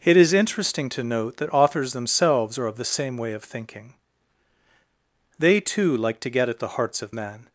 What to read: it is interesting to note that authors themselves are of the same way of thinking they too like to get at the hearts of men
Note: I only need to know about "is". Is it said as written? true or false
true